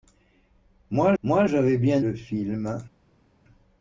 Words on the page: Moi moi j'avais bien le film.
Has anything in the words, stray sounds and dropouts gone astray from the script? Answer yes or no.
no